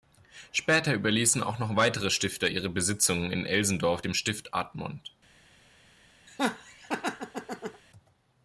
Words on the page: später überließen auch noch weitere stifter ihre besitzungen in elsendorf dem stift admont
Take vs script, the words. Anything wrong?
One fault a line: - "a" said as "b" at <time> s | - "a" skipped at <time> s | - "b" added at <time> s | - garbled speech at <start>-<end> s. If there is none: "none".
none